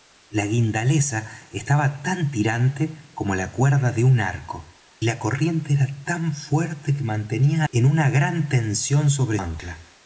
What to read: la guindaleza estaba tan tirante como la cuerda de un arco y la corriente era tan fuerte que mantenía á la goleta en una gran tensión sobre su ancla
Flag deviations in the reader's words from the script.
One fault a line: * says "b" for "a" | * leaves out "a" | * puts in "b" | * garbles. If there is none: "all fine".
* leaves out "y"
* leaves out "la goleta"
* leaves out "su"